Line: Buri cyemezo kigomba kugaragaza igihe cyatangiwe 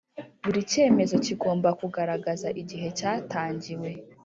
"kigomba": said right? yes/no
yes